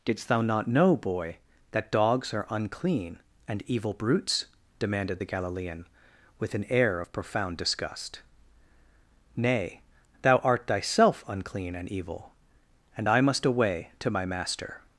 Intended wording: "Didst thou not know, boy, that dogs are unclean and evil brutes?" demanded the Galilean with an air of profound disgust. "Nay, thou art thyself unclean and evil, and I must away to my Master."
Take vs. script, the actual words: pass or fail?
pass